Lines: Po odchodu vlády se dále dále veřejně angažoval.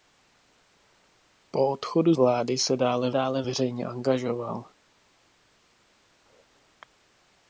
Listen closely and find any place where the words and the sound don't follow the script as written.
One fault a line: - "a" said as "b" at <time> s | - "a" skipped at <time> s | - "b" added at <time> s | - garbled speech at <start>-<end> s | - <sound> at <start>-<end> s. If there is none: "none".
none